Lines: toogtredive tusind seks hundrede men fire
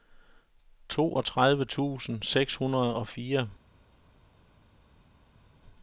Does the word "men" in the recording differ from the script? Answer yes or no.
yes